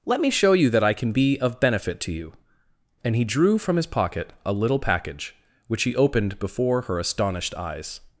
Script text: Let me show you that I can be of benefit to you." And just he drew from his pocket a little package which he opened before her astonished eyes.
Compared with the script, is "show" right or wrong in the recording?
right